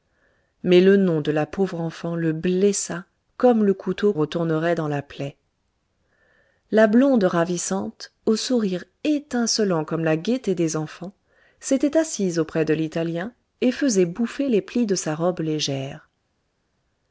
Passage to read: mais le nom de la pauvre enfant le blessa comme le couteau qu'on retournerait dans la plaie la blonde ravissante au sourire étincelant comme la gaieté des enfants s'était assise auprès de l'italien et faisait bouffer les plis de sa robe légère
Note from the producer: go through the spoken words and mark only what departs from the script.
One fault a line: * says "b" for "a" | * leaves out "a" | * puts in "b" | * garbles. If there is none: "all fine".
* leaves out "qu'on"